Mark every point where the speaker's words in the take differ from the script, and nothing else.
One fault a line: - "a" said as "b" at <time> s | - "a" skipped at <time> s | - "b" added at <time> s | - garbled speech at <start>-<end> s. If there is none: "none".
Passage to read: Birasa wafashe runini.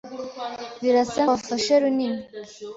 none